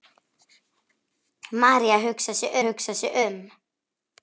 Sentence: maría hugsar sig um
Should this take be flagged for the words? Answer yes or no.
yes